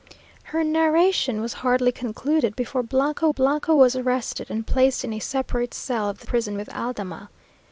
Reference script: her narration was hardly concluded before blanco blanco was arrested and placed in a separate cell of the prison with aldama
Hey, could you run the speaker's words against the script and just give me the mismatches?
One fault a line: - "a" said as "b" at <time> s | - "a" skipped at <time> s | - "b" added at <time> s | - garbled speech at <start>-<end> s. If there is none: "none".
none